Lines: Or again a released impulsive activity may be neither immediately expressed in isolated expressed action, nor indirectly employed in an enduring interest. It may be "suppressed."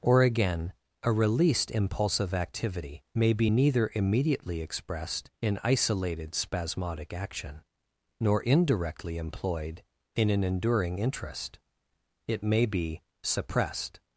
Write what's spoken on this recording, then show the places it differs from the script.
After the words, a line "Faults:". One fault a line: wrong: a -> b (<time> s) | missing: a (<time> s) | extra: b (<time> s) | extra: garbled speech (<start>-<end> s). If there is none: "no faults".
Or again a released impulsive activity may be neither immediately expressed in isolated spasmodic action, nor indirectly employed in an enduring interest. It may be "suppressed."
Faults:
wrong: expressed -> spasmodic (6.3 s)